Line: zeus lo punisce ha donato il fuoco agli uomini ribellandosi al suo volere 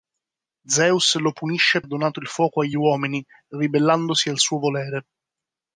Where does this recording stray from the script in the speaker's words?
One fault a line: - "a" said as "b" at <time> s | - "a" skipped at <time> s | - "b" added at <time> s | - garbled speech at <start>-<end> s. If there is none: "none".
none